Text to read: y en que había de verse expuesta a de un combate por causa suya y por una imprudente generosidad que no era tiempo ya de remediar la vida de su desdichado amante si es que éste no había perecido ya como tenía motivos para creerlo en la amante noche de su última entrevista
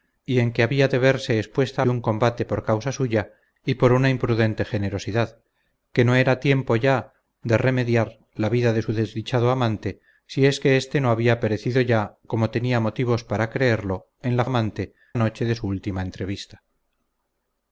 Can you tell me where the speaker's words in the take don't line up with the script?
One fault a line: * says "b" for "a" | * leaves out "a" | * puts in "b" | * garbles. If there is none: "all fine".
all fine